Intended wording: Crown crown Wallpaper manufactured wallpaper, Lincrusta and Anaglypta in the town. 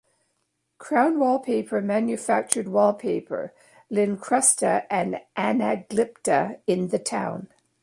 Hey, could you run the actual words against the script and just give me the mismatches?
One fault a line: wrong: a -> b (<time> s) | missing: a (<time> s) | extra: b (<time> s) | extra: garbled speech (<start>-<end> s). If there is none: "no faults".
missing: crown (1.2 s)